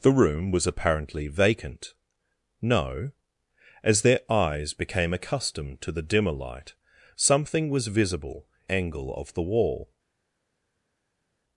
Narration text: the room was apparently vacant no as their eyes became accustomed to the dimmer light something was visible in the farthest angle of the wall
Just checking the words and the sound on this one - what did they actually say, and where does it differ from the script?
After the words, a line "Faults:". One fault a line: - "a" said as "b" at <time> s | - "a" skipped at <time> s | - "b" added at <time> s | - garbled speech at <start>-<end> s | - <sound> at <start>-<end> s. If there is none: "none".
the room was apparently vacant no as their eyes became accustomed to the dimmer light something was visible angle of the wall
Faults:
- "in the farthest" skipped at 8.5 s